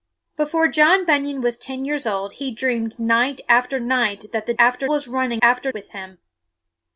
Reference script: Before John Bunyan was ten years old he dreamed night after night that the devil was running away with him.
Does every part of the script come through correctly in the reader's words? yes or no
no